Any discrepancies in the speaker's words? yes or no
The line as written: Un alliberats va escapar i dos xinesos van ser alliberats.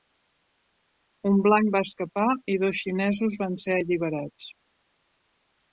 yes